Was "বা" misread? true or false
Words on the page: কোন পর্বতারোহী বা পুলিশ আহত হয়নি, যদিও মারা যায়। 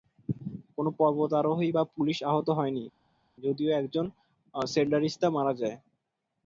false